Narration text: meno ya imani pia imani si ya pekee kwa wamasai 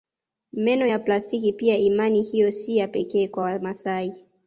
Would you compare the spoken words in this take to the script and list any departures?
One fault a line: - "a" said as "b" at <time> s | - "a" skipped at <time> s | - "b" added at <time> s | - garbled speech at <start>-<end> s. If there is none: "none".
- "imani" said as "plastiki" at 1.0 s
- "hiyo" added at 2.2 s